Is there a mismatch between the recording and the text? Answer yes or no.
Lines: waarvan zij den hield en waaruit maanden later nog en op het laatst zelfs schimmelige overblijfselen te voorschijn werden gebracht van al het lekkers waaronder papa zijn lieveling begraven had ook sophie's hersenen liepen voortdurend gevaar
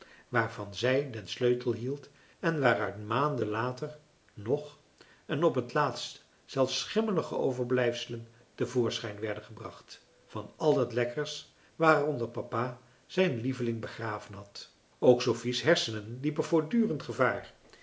yes